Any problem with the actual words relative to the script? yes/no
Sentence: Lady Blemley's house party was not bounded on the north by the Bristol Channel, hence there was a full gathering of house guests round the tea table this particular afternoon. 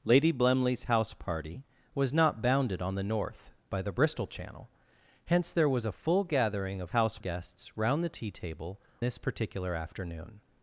no